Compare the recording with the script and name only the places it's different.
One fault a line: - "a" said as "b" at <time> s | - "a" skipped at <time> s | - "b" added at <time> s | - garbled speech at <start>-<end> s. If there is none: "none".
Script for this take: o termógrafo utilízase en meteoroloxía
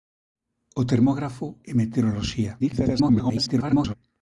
- "utilízase" skipped at 1.4 s
- garbled speech at 2.6-4.0 s